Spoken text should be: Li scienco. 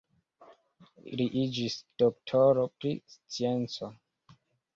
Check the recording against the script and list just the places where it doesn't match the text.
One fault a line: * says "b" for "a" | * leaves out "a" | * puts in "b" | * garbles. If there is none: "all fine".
* puts in "iĝis doktoro pri"